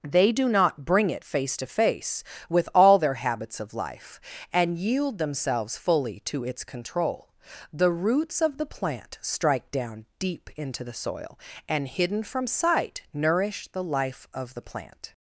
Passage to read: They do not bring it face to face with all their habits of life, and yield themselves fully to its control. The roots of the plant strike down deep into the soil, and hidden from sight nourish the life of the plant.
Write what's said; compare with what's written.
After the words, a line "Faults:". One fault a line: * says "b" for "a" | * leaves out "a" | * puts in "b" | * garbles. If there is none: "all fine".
They do not bring it face to face with all their habits of life, and yield themselves fully to its control. The roots of the plant strike down deep into the soil, and hidden from sight nourish the life of the plant.
Faults:
all fine